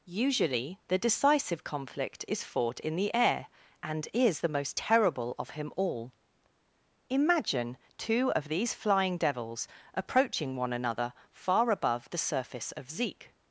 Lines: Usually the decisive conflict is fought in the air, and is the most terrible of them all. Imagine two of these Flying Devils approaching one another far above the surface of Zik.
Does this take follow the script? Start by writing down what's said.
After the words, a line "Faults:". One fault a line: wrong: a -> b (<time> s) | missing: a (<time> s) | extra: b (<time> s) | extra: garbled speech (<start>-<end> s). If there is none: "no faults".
Usually the decisive conflict is fought in the air, and is the most terrible of him all. Imagine two of these Flying Devils approaching one another far above the surface of Zik.
Faults:
wrong: them -> him (5.5 s)